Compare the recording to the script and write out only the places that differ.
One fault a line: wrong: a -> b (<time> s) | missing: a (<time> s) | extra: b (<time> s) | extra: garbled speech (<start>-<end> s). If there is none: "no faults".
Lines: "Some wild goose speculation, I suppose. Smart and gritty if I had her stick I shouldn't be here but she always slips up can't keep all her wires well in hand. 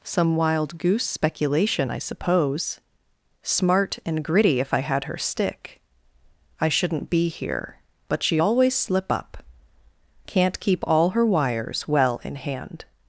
wrong: slips -> slip (8.7 s)